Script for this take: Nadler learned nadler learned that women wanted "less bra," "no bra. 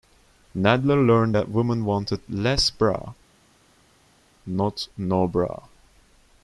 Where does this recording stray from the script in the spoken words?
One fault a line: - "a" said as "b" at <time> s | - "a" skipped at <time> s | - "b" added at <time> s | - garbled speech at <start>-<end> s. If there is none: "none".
- "nadler learned" skipped at 1.4 s
- "not" added at 4.5 s